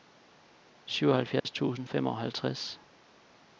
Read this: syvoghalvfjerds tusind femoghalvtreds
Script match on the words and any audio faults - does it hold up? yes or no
no